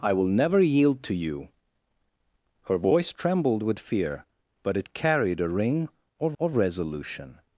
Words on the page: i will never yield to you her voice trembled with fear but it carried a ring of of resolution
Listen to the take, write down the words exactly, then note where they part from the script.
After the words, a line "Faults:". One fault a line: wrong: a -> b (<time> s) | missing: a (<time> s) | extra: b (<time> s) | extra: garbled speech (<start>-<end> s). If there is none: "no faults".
i will never yield to you her voice trembled with fear but it carried a ring of of resolution
Faults:
no faults